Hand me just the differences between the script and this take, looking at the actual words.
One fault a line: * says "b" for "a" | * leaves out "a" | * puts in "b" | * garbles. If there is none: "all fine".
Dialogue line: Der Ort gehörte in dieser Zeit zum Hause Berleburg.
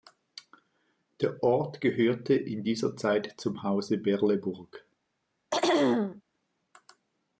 all fine